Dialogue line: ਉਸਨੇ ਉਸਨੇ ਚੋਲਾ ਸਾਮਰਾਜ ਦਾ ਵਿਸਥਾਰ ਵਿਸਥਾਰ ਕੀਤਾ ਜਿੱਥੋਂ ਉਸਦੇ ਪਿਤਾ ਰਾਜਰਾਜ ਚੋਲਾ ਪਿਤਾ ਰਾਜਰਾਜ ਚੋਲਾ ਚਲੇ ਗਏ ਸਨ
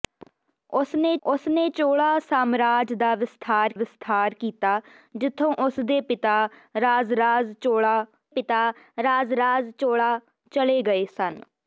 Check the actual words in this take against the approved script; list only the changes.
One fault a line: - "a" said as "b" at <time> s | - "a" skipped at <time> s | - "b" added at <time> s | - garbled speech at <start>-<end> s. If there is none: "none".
none